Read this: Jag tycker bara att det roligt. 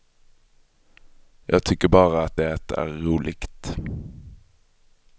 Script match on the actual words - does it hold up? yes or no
no